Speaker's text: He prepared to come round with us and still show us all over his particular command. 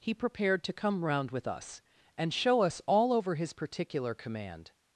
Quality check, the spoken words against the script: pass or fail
fail